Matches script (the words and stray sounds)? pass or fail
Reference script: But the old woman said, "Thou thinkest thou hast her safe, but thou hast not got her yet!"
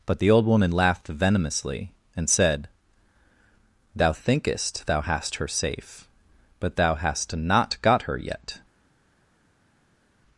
fail